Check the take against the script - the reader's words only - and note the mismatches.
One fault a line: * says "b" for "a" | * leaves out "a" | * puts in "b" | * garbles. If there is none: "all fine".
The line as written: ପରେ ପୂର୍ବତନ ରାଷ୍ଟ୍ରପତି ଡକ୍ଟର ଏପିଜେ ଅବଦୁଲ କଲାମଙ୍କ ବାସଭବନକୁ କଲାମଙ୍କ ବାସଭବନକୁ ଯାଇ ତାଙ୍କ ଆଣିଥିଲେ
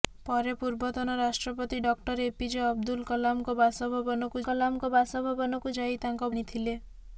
all fine